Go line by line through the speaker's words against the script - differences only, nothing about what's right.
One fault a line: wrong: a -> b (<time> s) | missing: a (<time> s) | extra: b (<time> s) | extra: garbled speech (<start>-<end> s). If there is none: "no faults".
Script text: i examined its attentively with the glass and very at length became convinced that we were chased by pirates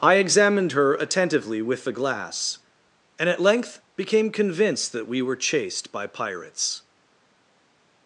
wrong: its -> her (0.7 s)
missing: very (3.3 s)